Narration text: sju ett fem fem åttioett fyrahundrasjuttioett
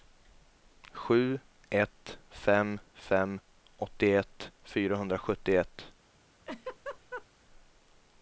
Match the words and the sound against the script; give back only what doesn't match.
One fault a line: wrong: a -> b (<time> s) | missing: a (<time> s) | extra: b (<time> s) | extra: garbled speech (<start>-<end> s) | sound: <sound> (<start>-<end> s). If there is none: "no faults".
sound: laugh (6.5-7.3 s)